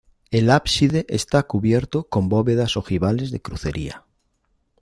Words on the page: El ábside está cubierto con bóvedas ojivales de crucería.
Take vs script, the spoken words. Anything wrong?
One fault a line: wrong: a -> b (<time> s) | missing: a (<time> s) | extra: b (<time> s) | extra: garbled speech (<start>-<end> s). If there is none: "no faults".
no faults